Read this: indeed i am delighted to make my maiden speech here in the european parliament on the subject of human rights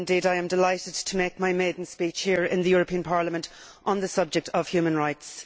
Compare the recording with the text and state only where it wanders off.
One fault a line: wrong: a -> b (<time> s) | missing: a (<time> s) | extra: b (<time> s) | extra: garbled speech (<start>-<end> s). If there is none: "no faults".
no faults